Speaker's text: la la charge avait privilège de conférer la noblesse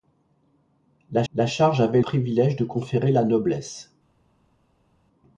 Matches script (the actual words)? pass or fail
pass